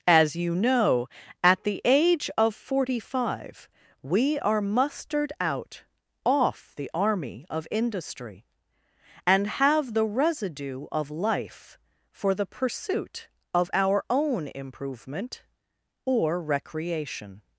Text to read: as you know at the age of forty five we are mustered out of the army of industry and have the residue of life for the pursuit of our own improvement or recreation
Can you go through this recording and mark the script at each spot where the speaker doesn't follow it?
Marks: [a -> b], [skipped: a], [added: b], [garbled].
as you know at the age of forty five we are mustered out [of -> off] the army of industry and have the residue of life for the pursuit of our own improvement or recreation